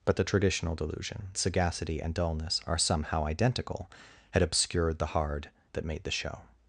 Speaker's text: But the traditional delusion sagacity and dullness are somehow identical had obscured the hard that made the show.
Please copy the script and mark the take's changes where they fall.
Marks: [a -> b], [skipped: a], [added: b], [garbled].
But the traditional delusion sagacity and dullness are somehow identical had obscured the hard that made the show.